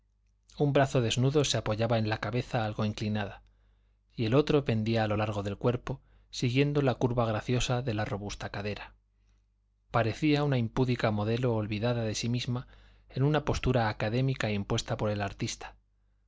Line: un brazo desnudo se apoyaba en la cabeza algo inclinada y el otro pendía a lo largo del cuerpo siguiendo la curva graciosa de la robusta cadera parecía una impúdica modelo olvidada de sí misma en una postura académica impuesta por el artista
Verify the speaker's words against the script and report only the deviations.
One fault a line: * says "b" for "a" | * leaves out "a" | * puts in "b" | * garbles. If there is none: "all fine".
all fine